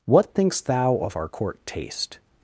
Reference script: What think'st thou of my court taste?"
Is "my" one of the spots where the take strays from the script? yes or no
yes